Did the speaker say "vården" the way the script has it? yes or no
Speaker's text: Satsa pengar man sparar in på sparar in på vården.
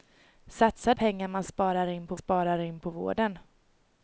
yes